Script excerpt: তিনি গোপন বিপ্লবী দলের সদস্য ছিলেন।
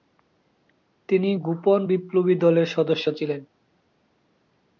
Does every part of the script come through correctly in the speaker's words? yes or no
yes